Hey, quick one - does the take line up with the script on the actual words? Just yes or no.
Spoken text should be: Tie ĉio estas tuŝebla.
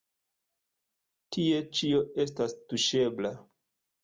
yes